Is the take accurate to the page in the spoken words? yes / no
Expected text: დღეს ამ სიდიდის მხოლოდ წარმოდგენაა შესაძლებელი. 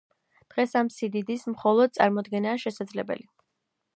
yes